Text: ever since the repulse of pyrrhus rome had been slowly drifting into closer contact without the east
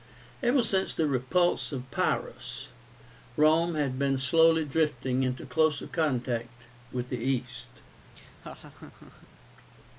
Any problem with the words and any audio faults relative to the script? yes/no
yes